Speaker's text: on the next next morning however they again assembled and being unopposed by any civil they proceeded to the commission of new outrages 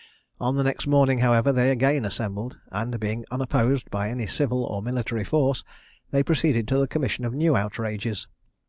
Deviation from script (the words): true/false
true